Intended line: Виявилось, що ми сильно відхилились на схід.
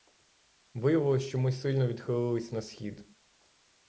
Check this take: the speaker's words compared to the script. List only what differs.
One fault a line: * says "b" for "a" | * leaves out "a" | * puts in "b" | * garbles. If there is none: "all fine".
all fine